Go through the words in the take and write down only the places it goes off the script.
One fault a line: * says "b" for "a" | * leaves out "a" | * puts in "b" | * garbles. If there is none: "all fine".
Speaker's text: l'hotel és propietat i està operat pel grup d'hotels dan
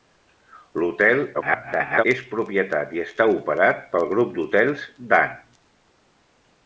* garbles